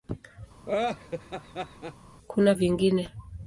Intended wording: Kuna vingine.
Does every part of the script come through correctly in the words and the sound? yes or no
no